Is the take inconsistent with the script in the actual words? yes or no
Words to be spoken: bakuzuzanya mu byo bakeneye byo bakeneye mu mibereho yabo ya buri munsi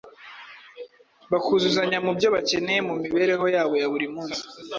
yes